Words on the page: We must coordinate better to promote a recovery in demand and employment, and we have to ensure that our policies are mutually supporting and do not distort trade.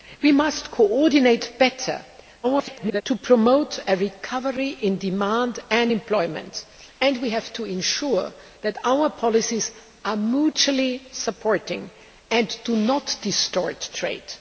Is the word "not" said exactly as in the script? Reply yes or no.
yes